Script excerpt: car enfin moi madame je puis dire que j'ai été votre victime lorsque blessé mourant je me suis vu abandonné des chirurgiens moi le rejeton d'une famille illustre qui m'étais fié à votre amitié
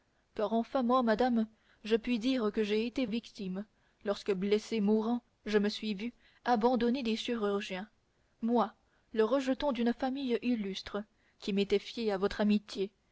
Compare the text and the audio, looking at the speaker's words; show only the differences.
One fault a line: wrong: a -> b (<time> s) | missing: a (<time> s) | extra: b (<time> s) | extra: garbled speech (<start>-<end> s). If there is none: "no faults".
missing: votre (3.0 s)